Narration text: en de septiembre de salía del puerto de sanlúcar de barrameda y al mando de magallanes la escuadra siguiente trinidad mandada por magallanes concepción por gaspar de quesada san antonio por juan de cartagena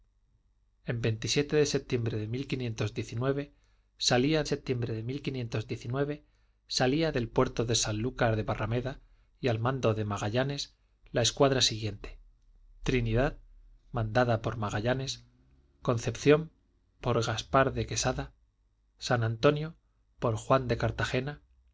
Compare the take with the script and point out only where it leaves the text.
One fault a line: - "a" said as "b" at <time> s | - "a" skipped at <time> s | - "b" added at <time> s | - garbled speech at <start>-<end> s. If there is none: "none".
- "septiembre de salía" added at 4.4 s